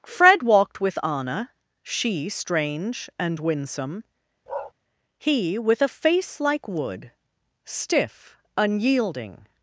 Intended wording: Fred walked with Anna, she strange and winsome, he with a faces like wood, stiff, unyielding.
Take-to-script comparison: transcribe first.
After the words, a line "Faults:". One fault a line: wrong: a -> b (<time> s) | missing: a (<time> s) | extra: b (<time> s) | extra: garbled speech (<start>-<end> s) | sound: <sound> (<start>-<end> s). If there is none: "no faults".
Fred walked with Anna, she strange and winsome, he with a face like wood, stiff, unyielding.
Faults:
sound: bark (4.5-4.7 s)
wrong: faces -> face (5.9 s)